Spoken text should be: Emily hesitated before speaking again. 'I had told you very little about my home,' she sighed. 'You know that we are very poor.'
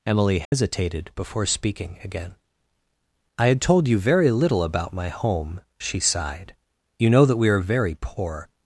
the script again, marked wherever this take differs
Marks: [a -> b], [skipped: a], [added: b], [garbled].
Emily hesitated before speaking again. 'I had told you very little about my home,' she sighed. 'You know that we are very poor.'